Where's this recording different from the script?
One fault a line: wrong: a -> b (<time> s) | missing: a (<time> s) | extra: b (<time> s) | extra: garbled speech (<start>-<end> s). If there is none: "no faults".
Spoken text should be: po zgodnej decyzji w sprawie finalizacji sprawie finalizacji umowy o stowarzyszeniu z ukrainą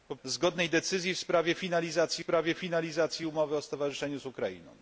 no faults